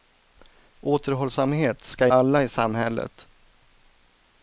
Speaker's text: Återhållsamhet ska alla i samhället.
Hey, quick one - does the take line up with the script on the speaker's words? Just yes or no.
yes